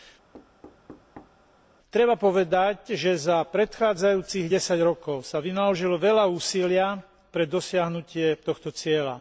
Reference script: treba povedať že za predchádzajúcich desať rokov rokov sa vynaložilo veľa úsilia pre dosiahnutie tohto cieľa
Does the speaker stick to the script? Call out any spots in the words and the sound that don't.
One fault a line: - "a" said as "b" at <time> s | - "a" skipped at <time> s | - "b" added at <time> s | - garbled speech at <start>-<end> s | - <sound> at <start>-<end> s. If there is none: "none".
- thud at 0.3-1.4 s
- "rokov" skipped at 5.3 s